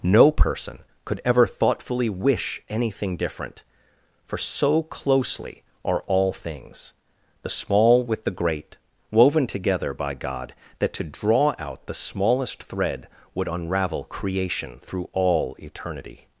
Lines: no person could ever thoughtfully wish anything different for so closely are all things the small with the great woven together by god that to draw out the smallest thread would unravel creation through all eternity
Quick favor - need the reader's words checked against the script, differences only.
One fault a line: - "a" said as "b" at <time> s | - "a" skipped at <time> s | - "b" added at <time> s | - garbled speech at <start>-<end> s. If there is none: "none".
none